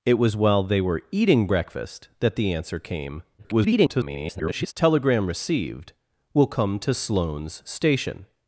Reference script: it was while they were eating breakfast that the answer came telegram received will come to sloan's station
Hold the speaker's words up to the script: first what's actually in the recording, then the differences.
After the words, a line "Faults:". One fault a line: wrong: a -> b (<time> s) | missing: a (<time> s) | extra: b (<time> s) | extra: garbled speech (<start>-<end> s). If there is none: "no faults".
it was while they were eating breakfast that the answer came [garbled] telegram received will come to sloan's station
Faults:
extra: garbled speech (3.4-4.7 s)